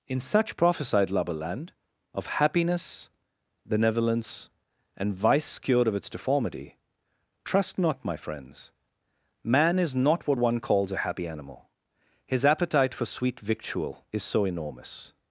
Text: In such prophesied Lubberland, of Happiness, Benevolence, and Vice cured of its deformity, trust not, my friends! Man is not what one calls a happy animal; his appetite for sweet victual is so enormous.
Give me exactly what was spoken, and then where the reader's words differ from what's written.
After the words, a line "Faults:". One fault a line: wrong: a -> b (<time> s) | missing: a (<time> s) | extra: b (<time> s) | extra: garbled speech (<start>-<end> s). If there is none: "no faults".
In such prophesied Lubberland, of Happiness, Benevolence, and Vice cured of its deformity, trust not, my friends! Man is not what one calls a happy animal; his appetite for sweet victual is so enormous.
Faults:
no faults